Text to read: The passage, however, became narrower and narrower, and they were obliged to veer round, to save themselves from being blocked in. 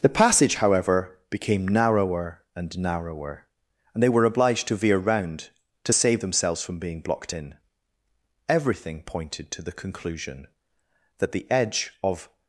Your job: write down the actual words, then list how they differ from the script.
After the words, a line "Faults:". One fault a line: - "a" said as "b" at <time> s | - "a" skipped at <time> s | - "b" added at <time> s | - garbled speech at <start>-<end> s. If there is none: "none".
The passage, however, became narrower and narrower, and they were obliged to veer round, to save themselves from being blocked in. Everything pointed to the conclusion that the edge of
Faults:
- "Everything pointed to the conclusion that the edge of" added at 8.5 s